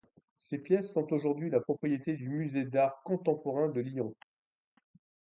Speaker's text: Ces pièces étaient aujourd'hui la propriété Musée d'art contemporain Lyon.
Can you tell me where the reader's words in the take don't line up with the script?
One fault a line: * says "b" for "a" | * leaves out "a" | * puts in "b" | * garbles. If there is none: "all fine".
* says "sont" for "étaient"
* puts in "du"
* puts in "de"